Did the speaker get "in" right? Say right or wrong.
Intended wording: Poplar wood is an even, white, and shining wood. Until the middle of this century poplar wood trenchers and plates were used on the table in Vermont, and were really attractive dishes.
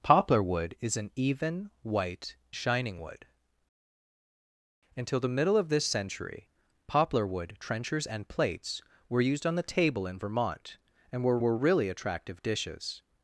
right